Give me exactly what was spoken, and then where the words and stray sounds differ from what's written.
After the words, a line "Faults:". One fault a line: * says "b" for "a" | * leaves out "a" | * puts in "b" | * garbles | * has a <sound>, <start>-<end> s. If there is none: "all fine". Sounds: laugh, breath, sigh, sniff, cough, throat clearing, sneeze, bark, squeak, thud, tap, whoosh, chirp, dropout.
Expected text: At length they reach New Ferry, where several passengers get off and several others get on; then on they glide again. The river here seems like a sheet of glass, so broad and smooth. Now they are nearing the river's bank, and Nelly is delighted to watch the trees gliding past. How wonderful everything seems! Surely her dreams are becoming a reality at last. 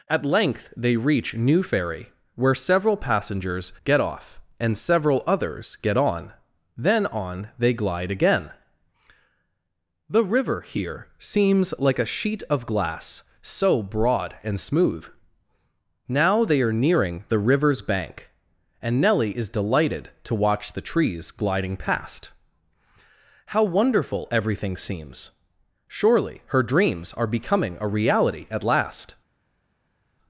At length they reach New Ferry, where several passengers get off and several others get on; then on they glide again. The river here seems like a sheet of glass, so broad and smooth. Now they are nearing the river's bank, and Nelly is delighted to watch the trees gliding past. How wonderful everything seems! Surely her dreams are becoming a reality at last.
Faults:
all fine